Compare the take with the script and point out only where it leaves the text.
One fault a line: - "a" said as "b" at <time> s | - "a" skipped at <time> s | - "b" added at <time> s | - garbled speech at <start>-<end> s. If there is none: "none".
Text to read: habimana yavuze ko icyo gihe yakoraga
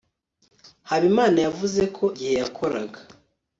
- "icyo" skipped at 2.0 s